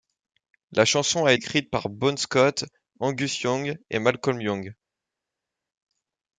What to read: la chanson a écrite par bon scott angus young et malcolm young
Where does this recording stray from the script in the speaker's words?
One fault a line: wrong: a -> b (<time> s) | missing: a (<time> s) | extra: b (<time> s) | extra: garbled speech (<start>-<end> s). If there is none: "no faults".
no faults